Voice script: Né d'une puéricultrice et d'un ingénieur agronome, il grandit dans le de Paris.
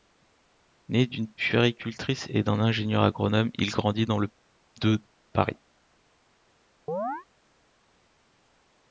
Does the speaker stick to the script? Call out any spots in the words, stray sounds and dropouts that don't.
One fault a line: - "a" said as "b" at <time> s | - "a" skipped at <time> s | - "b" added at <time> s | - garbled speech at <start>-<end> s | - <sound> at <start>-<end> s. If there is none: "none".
- chirp at 6.9-7.3 s